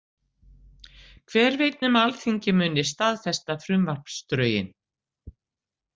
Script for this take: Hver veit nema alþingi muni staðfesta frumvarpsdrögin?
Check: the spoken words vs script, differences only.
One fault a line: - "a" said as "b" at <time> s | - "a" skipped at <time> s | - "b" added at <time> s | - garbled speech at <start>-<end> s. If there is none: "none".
none